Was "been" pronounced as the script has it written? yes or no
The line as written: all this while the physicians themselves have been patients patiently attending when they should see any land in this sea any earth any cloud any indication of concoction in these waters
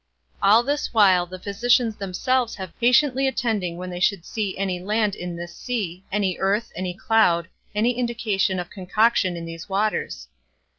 no